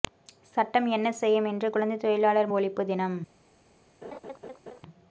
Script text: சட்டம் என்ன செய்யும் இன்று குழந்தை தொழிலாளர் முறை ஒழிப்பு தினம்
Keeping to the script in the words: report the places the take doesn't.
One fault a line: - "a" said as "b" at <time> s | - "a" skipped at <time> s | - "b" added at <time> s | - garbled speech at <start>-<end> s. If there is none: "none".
- "முறை" skipped at 2.5 s